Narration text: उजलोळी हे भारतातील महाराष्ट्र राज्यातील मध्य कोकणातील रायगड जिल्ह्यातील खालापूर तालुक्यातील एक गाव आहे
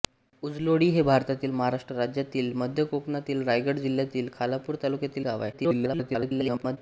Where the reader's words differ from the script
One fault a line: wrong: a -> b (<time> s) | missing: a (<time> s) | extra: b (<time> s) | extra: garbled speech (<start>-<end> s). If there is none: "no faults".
missing: एक (5.2 s)
extra: garbled speech (5.5-6.8 s)